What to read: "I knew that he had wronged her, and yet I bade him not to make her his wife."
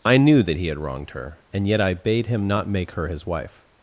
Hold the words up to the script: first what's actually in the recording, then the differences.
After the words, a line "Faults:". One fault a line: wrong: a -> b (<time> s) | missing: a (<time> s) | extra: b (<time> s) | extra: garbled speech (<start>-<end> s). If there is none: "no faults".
"I knew that he had wronged her, and yet I bade him not make her his wife."
Faults:
missing: to (2.7 s)